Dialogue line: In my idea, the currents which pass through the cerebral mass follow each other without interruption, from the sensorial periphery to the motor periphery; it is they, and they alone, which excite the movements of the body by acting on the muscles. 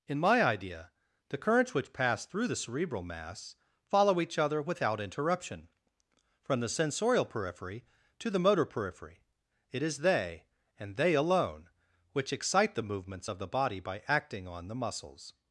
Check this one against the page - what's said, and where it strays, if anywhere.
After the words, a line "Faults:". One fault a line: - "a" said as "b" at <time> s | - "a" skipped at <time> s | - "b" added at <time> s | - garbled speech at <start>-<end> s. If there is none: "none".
In my idea, the currents which pass through the cerebral mass follow each other without interruption, from the sensorial periphery to the motor periphery; it is they, and they alone, which excite the movements of the body by acting on the muscles.
Faults:
none